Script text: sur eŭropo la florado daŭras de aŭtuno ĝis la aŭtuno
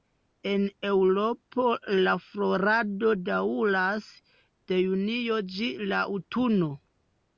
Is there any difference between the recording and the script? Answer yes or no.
yes